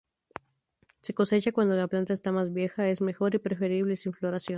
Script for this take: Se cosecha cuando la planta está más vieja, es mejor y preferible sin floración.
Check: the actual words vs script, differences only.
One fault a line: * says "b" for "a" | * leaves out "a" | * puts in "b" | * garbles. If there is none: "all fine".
all fine